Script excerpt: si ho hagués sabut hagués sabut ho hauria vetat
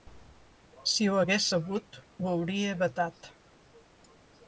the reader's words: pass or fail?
fail